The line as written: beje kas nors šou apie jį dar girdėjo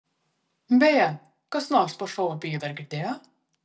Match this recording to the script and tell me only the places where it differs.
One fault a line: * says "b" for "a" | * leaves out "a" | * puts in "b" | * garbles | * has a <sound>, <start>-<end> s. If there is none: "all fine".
* puts in "po"